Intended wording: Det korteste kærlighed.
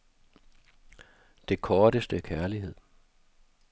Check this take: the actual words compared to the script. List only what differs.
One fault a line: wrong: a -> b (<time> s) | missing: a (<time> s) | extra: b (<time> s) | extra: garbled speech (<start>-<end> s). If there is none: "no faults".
no faults